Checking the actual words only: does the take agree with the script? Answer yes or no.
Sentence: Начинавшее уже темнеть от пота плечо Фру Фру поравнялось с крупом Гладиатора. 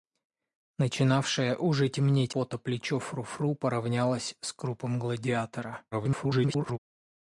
no